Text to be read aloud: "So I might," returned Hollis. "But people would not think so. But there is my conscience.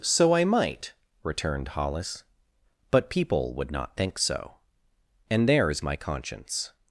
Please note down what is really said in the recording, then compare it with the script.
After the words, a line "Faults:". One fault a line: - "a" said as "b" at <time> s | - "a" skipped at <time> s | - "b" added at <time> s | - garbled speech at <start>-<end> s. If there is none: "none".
"So I might," returned Hollis. "But people would not think so. And there is my conscience.
Faults:
- "But" said as "And" at 5.3 s